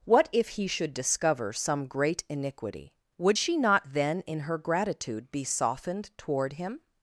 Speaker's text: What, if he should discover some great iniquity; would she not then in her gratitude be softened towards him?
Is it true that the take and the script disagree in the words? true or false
true